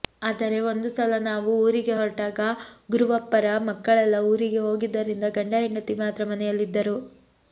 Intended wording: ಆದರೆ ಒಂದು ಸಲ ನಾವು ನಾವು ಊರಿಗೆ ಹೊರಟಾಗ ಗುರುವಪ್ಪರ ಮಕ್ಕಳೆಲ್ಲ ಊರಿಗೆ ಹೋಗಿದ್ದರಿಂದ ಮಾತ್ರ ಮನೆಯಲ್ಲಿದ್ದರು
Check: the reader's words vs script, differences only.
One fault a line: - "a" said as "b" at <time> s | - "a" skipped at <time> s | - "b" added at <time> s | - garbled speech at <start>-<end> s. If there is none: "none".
- "ನಾವು" skipped at 1.5 s
- "ಗಂಡ ಹೆಂಡತಿ" added at 5.4 s